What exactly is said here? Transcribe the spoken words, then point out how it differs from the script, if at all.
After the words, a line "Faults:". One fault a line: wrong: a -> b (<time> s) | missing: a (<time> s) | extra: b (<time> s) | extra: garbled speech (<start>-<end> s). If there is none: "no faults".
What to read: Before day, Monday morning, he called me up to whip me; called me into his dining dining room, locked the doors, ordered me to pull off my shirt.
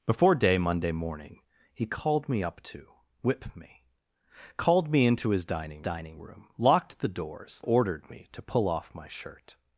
Before day, Monday morning, he called me up to whip me; called me into his dining dining room, locked the doors, ordered me to pull off my shirt.
Faults:
no faults